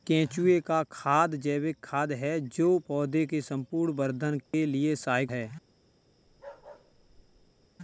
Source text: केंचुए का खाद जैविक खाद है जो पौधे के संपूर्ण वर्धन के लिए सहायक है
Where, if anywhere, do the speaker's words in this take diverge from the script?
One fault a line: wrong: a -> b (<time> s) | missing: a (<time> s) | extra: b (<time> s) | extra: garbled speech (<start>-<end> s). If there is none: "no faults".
no faults